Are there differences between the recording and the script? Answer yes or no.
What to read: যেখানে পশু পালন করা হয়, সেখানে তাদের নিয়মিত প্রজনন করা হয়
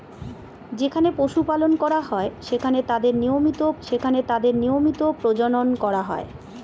yes